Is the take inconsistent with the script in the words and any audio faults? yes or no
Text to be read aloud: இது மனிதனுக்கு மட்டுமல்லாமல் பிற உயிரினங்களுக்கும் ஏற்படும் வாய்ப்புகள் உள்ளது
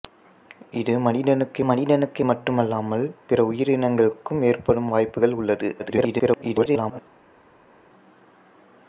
yes